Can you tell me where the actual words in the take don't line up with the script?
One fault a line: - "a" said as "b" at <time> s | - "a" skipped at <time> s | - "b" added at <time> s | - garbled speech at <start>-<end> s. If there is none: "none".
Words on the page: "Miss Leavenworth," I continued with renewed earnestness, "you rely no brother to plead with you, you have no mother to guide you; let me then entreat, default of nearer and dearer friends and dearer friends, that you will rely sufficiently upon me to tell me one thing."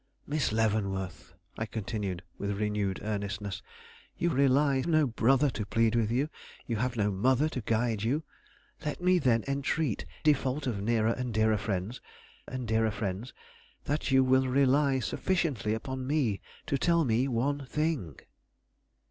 none